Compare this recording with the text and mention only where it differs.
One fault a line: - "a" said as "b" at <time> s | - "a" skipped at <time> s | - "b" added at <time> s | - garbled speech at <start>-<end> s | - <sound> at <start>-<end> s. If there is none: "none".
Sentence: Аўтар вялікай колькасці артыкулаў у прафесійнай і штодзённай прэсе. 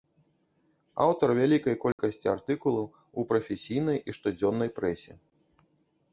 - dropout at 1.9-2.0 s